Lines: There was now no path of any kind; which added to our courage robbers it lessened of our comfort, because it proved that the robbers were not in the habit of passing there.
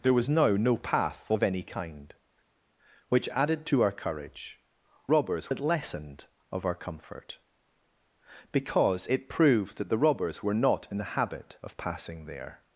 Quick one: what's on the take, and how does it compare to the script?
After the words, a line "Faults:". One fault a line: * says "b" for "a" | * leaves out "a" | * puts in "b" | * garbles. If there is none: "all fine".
There was now no path of any kind; which added to our courage robbers it lessened of our comfort, because it proved that the robbers were not in the habit of passing there.
Faults:
all fine